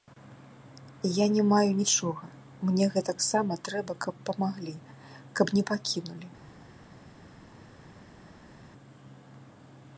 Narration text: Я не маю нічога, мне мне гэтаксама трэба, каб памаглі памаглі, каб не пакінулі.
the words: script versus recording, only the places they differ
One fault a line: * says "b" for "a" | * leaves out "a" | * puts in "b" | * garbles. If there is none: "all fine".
* leaves out "мне"
* leaves out "памаглі"